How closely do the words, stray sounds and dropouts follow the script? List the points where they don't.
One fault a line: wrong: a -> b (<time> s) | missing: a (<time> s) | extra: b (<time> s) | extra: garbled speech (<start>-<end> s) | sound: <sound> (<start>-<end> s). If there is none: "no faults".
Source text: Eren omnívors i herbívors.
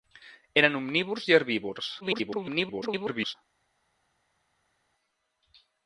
extra: garbled speech (2.0-3.3 s)